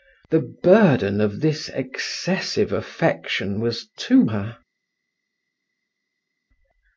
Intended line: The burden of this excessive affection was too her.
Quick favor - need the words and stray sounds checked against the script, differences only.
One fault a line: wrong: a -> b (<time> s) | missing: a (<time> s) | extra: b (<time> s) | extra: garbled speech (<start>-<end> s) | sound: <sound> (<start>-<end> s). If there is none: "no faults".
no faults